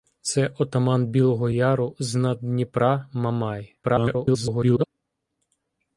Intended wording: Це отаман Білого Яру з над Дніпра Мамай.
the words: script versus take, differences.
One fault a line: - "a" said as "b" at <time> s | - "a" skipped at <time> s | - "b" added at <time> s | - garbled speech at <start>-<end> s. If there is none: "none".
- garbled speech at 3.8-4.9 s